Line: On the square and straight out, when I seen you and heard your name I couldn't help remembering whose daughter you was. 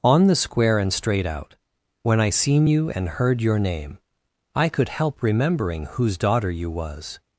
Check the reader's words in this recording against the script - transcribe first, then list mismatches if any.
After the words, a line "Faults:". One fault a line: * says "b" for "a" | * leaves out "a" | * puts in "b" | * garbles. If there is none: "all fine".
On the square and straight out, when I seen you and heard your name I could help remembering whose daughter you was.
Faults:
* says "could" for "couldn't"